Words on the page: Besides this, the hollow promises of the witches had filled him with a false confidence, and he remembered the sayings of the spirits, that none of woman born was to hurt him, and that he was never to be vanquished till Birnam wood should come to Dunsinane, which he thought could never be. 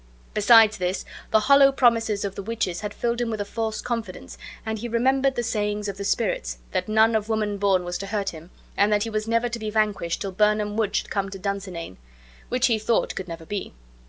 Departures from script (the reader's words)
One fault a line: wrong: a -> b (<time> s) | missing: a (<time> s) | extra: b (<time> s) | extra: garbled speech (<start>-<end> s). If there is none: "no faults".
no faults